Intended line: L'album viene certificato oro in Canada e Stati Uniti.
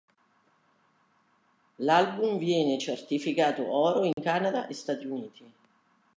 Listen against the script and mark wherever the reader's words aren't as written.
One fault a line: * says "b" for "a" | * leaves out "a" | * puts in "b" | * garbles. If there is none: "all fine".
all fine